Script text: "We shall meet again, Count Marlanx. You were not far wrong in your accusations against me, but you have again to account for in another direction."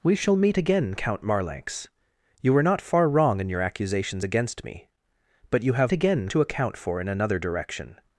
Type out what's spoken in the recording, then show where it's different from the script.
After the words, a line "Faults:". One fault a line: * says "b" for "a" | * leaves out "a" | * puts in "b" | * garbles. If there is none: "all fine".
"We shall meet again, Count Marlanx. You were not far wrong in your accusations against me, but you have again to account for in another direction."
Faults:
all fine